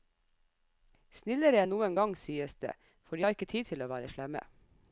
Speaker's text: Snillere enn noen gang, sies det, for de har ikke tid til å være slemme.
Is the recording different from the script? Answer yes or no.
no